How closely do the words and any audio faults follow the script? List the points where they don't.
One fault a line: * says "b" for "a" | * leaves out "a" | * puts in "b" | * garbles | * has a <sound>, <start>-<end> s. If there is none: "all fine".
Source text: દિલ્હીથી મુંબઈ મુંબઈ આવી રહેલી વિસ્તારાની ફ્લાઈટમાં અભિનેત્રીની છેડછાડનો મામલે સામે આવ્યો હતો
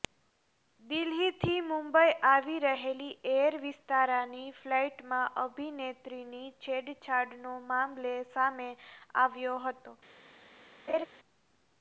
* leaves out "મુંબઈ"
* puts in "એર"
* has a laugh, 10.9-11.1 s